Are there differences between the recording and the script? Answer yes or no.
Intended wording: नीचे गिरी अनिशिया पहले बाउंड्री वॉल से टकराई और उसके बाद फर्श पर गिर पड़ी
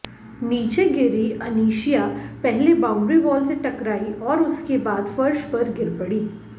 no